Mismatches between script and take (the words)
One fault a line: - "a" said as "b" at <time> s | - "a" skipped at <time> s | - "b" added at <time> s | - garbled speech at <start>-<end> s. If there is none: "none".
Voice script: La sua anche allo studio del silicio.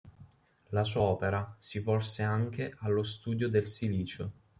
- "opera si volse" added at 1.0 s